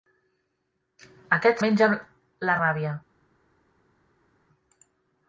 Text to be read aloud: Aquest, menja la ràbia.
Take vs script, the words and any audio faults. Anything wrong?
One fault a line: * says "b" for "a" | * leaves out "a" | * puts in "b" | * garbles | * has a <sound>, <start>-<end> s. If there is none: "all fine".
all fine